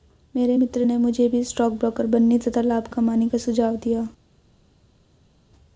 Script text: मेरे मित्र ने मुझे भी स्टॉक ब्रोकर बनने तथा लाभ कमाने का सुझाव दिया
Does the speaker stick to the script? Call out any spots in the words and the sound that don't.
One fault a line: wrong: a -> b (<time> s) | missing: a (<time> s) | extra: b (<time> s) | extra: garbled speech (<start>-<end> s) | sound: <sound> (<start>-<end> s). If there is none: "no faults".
no faults